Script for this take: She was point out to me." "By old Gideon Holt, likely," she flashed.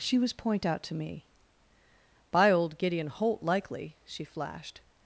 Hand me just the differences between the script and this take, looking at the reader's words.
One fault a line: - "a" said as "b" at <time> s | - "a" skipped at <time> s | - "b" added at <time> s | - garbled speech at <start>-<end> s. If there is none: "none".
none